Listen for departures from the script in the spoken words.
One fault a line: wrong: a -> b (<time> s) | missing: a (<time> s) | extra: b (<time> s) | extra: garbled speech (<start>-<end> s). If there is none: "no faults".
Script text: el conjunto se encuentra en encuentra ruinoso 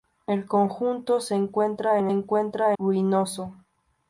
no faults